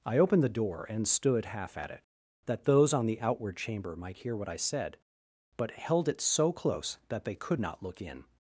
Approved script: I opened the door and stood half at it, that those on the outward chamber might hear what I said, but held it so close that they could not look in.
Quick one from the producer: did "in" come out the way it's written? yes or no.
yes